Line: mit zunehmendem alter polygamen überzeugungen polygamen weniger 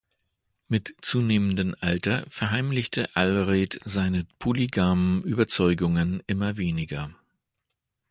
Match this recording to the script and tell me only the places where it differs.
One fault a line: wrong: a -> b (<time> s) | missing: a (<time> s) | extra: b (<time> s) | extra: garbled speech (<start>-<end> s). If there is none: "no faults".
extra: verheimlichte allred seine (2.3 s)
wrong: polygamen -> immer (6.3 s)